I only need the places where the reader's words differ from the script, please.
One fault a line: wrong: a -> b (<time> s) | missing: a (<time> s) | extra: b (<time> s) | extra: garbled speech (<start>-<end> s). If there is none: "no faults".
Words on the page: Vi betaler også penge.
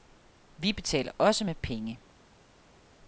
extra: med (1.4 s)